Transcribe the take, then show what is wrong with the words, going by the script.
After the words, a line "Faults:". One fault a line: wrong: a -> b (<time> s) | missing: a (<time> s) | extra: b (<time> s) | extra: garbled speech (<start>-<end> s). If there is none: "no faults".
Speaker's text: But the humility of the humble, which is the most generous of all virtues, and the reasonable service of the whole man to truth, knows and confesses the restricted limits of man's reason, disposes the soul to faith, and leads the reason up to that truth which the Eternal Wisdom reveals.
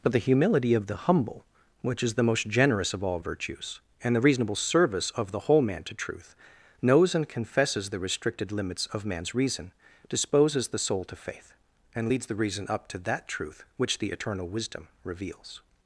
But the humility of the humble, which is the most generous of all virtues, and the reasonable service of the whole man to truth, knows and confesses the restricted limits of man's reason, disposes the soul to faith, and leads the reason up to that truth which the Eternal Wisdom reveals.
Faults:
no faults